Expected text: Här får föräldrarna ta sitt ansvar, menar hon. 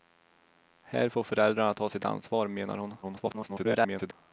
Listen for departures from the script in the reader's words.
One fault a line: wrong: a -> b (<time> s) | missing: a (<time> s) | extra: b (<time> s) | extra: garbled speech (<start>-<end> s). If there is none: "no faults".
extra: garbled speech (3.0-4.1 s)